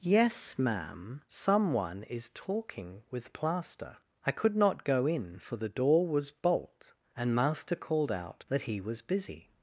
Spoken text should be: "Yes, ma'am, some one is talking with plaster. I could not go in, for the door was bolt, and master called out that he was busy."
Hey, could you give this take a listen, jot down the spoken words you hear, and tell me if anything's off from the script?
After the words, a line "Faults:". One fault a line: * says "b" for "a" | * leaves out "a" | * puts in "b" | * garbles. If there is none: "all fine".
"Yes, ma'am, some one is talking with plaster. I could not go in, for the door was bolt, and master called out that he was busy."
Faults:
all fine